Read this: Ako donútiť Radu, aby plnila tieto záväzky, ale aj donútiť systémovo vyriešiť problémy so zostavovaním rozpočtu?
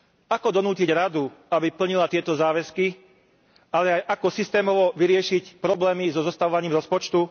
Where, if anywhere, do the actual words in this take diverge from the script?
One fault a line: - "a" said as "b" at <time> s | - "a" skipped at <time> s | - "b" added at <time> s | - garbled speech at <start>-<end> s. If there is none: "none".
- "donútiť" said as "ako" at 4.1 s